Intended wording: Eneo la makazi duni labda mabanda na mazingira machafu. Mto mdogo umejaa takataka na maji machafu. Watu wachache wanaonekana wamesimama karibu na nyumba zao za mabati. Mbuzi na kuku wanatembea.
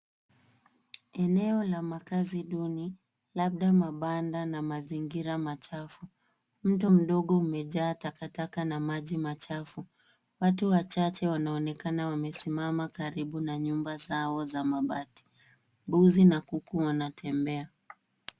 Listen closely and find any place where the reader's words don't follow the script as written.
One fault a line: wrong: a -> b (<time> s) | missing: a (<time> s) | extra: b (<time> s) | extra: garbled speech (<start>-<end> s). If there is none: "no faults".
no faults